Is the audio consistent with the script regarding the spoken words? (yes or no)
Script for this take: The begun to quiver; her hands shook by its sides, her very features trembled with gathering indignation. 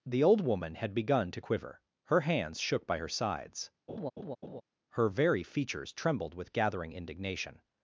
no